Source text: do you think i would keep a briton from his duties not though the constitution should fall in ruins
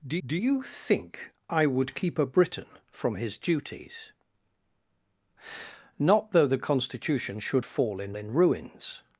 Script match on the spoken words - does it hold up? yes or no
no